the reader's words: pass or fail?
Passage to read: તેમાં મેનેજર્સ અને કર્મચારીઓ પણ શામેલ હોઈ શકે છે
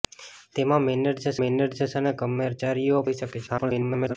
fail